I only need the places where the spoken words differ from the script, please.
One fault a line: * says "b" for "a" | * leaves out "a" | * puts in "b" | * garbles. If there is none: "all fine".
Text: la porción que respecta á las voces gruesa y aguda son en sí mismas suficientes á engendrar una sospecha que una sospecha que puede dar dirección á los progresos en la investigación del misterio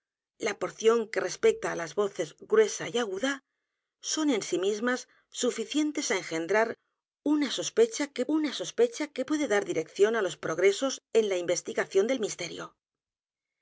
all fine